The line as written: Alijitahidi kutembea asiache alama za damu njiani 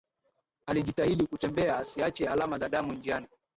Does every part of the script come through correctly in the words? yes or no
yes